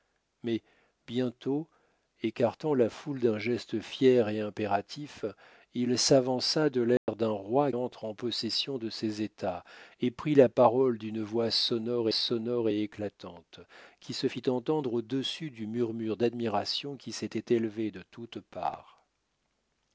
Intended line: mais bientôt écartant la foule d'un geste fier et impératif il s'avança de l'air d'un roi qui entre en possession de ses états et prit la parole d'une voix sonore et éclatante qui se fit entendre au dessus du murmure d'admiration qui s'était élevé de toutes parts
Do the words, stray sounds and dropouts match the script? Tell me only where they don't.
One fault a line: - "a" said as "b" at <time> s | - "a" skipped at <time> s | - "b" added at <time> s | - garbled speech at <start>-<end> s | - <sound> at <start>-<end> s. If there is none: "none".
- dropout at 7.0-7.1 s
- "qui" skipped at 7.7 s
- "sonore" added at 12.1 s